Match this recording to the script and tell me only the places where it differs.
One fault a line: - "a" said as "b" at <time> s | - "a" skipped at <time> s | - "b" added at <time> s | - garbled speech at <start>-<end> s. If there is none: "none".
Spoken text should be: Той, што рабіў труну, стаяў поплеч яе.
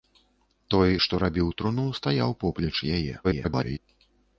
- garbled speech at 3.2-3.8 s